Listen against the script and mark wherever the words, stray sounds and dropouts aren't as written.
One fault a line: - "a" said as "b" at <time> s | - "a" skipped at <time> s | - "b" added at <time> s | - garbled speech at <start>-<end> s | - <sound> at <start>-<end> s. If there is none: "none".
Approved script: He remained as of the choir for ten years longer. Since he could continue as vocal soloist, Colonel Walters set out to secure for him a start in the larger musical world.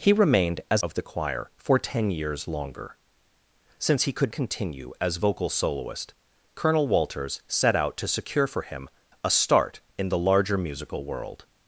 none